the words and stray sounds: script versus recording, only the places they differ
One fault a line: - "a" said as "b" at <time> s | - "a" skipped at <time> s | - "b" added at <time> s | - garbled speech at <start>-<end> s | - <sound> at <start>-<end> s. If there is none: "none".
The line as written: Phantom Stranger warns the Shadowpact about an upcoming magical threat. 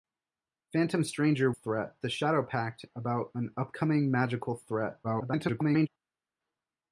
- "warns" said as "threat" at 1.5 s
- garbled speech at 5.0-5.9 s